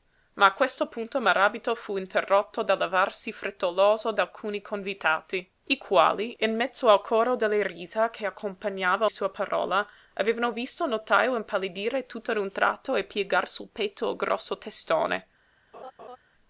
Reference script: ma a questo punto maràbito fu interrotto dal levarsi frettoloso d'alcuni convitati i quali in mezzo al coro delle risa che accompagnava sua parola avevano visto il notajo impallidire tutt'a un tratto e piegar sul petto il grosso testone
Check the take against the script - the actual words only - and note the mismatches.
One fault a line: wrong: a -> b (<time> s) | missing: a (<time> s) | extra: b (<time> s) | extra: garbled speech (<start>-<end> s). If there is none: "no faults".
no faults